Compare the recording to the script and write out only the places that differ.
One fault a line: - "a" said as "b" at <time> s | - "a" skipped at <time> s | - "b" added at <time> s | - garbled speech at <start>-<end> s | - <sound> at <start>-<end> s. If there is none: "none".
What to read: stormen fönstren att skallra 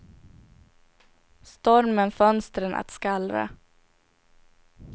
none